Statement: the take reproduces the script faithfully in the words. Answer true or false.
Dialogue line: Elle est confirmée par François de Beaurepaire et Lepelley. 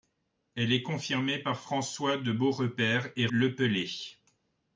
true